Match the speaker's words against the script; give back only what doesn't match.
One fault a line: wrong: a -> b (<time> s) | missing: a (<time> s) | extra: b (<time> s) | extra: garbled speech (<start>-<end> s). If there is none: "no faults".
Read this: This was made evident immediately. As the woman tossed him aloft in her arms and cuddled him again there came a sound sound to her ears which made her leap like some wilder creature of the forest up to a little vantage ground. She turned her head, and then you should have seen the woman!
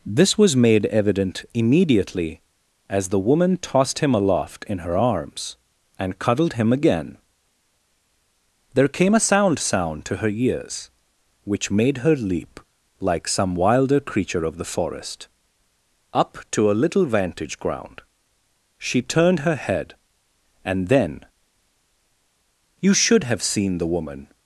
no faults